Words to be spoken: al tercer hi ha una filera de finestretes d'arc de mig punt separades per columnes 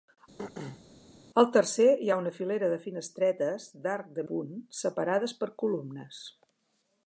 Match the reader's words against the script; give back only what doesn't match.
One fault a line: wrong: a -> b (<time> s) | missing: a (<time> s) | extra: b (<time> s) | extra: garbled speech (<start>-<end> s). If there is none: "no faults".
missing: mig (4.3 s)